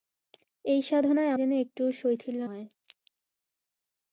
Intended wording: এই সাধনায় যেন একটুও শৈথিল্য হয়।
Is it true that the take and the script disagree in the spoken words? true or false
false